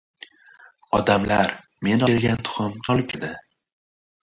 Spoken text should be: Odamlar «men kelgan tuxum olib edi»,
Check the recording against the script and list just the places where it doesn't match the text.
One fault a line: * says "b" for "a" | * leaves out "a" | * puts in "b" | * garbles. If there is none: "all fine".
all fine